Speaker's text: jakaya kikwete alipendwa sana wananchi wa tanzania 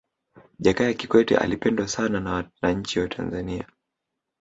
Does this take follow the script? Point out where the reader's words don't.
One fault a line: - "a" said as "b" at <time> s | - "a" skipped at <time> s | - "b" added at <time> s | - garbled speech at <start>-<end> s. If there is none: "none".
- "na" added at 2.2 s